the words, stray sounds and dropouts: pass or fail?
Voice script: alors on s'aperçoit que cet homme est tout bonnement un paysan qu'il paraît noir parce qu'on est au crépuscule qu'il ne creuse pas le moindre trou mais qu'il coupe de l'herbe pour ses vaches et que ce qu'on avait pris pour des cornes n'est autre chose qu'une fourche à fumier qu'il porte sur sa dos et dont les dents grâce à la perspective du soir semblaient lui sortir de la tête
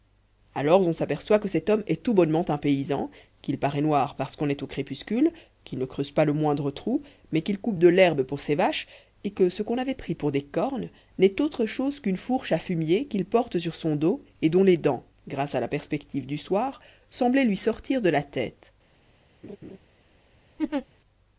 fail